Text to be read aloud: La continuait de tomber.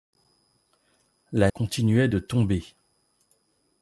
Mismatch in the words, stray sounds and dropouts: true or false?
false